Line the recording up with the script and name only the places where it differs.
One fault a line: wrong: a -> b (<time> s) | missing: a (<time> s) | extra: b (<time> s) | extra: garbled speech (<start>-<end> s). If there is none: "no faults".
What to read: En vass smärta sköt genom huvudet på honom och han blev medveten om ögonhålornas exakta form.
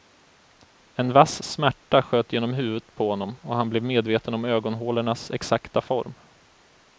no faults